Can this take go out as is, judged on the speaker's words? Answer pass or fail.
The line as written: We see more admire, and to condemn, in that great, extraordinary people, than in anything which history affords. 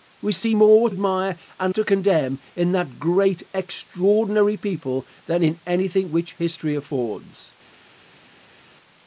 pass